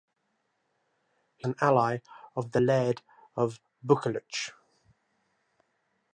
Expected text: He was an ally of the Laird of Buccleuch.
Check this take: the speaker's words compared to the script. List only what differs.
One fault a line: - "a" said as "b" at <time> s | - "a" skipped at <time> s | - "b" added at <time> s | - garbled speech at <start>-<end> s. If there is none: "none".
- "was" skipped at 1.5 s